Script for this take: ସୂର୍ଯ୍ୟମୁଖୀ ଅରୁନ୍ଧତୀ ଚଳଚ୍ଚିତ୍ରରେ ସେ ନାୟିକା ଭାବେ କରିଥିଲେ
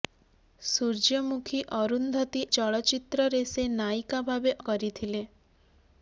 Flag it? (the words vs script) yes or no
no